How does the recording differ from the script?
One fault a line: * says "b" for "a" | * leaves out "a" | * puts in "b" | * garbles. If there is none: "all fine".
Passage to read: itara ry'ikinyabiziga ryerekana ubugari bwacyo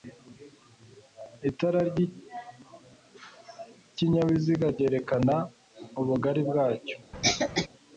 all fine